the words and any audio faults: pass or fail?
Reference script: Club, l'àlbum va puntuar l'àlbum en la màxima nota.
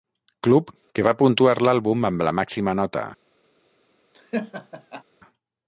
fail